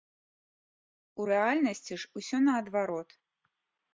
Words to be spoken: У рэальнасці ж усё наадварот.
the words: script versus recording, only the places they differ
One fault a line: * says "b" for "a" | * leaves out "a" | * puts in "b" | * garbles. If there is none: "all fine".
all fine